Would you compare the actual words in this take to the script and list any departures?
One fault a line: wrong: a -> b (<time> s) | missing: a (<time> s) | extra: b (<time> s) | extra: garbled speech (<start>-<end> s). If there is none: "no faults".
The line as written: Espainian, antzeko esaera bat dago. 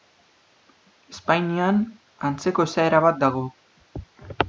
no faults